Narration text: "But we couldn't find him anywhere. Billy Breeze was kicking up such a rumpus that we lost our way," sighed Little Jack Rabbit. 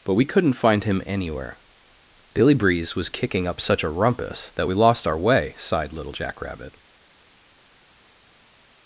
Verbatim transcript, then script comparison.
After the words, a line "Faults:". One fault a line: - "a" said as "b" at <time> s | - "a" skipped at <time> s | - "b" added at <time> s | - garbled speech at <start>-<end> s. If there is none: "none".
"But we couldn't find him anywhere. Billy Breeze was kicking up such a rumpus that we lost our way," sighed Little Jack Rabbit.
Faults:
none